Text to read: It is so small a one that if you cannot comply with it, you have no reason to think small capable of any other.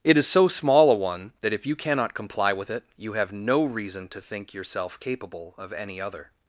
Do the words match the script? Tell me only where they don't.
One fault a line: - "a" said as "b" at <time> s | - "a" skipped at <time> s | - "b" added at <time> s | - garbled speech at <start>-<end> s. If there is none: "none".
- "small" said as "yourself" at 4.5 s